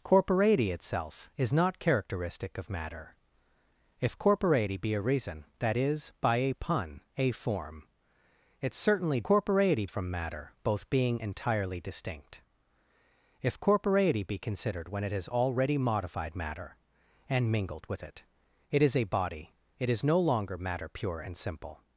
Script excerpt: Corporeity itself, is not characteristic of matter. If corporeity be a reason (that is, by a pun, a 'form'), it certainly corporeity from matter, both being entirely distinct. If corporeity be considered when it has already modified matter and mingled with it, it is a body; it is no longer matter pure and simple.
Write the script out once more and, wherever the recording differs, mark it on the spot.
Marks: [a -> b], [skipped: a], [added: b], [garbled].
Corporeity itself, is not characteristic of matter. If corporeity be a reason (that is, by a pun, a 'form'), it certainly corporeity from matter, both being entirely distinct. If corporeity be considered when it has already modified matter and mingled with it, it is a body; it is no longer matter pure and simple.